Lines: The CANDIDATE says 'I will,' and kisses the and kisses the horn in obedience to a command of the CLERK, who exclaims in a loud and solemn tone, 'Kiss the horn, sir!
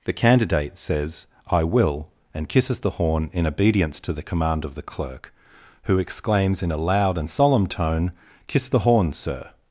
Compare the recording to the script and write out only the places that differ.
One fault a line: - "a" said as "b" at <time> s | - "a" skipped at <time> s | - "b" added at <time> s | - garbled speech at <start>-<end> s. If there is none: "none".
- "and kisses the" skipped at 3.0 s
- "a" said as "the" at 4.1 s